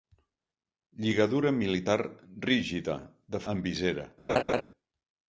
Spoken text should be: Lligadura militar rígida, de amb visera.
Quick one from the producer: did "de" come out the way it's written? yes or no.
yes